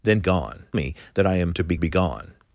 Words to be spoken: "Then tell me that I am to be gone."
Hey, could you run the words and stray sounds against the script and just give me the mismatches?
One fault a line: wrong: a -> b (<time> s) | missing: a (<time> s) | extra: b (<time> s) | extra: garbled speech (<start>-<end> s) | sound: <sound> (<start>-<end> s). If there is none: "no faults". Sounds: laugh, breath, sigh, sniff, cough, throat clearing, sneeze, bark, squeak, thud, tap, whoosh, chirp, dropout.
wrong: tell -> gone (0.2 s)
extra: be (1.8 s)